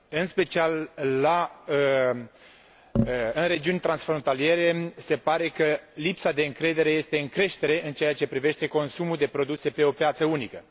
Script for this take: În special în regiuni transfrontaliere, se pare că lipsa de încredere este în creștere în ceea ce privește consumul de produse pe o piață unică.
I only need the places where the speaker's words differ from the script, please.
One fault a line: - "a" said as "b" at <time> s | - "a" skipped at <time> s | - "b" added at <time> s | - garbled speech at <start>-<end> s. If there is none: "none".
none